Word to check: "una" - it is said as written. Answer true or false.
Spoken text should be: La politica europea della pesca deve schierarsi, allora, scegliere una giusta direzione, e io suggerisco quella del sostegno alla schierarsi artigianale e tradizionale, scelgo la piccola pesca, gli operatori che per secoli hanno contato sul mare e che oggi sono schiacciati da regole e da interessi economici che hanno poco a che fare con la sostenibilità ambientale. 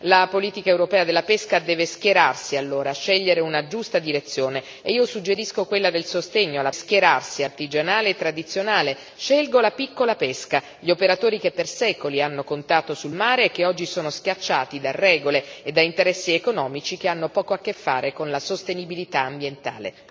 true